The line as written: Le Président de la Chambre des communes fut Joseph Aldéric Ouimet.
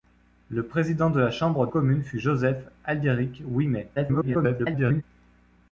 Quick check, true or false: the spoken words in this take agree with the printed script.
false